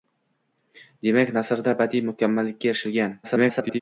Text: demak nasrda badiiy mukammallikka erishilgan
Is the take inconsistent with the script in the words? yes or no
yes